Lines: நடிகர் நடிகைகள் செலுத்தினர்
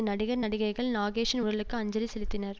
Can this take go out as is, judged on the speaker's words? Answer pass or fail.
fail